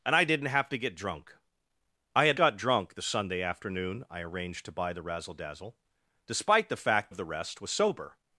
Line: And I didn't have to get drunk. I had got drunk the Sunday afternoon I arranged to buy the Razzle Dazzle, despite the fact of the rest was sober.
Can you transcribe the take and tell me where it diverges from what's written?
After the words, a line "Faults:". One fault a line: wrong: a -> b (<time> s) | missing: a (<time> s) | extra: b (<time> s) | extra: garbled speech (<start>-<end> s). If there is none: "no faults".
And I didn't have to get drunk. I had got drunk the Sunday afternoon I arranged to buy the Razzle Dazzle, despite the fact of the rest was sober.
Faults:
no faults